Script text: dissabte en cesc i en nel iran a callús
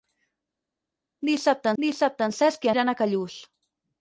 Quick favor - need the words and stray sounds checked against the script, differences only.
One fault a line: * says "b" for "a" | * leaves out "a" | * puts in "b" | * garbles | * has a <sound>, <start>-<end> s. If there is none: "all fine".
* puts in "dissabte"
* leaves out "en nel"